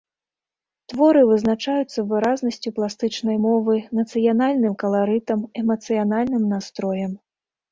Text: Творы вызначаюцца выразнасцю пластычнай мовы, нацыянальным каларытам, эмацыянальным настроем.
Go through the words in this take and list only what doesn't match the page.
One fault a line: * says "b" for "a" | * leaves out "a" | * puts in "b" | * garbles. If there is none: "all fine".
all fine